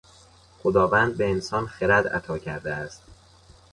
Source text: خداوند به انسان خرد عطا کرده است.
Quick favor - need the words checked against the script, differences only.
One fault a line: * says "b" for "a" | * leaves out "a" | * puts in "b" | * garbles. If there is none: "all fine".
all fine